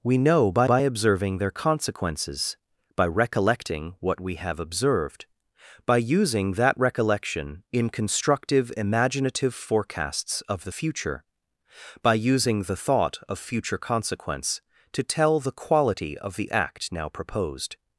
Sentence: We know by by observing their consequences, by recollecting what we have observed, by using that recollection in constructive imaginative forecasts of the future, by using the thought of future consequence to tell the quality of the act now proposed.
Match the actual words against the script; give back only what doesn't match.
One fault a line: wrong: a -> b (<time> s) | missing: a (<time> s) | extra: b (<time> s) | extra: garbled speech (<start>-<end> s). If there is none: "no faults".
no faults